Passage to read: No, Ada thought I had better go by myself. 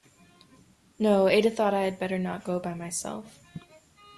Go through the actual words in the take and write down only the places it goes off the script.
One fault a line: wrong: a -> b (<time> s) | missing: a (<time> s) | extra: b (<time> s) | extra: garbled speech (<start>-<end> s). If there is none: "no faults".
extra: not (2.2 s)